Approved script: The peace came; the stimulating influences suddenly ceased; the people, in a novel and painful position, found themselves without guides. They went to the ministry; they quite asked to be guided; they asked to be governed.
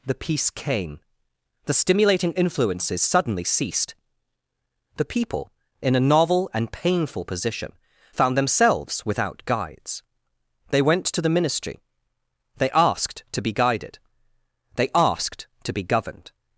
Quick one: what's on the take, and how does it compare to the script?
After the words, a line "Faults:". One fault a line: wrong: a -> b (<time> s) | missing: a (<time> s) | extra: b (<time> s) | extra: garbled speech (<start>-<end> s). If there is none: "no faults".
The peace came; the stimulating influences suddenly ceased; the people, in a novel and painful position, found themselves without guides. They went to the ministry; they asked to be guided; they asked to be governed.
Faults:
missing: quite (12.7 s)